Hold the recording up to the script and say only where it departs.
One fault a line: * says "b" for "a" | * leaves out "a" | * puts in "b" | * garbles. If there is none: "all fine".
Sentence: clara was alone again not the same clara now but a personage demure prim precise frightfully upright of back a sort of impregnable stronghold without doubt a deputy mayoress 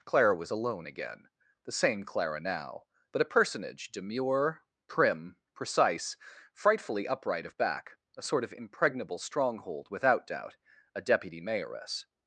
* leaves out "not"